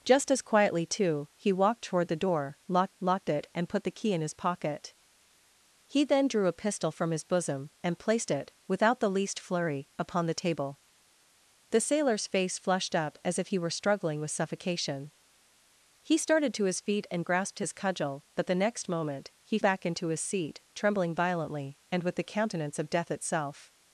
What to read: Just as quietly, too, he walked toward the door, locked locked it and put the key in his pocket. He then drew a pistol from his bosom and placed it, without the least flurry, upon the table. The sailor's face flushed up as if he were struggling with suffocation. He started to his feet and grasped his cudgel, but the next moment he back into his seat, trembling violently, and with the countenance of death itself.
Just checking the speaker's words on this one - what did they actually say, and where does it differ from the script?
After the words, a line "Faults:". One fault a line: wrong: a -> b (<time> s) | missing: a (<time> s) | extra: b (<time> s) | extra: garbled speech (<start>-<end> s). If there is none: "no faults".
Just as quietly, too, he walked toward the door, locked locked it and put the key in his pocket. He then drew a pistol from his bosom and placed it, without the least flurry, upon the table. The sailor's face flushed up as if he were struggling with suffocation. He started to his feet and grasped his cudgel, but the next moment he back into his seat, trembling violently, and with the countenance of death itself.
Faults:
no faults